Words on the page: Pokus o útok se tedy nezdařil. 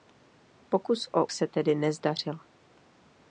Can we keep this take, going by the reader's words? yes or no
no